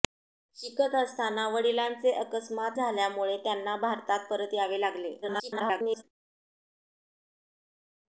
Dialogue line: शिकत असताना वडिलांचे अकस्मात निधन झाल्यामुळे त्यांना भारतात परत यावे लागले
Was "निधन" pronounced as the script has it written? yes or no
no